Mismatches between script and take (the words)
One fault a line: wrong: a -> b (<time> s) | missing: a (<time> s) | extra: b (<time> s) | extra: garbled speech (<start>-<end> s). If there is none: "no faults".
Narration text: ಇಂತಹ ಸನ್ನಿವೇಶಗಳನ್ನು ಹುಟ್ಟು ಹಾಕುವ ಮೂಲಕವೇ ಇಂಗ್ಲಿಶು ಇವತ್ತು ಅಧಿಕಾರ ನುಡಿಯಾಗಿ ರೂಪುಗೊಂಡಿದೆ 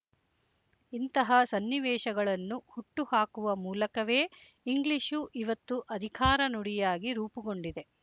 no faults